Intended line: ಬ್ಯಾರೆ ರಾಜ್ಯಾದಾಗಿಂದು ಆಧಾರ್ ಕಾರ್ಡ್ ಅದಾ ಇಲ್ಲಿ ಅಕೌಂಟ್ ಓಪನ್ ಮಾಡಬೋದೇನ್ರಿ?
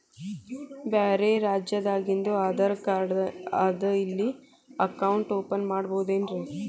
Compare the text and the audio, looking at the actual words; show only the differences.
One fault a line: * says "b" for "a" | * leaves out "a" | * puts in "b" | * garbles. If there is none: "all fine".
all fine